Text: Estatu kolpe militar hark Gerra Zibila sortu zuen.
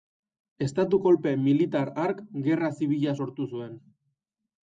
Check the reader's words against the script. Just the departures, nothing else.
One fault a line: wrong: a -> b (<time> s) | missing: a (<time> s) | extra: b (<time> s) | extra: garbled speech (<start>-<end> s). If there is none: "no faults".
no faults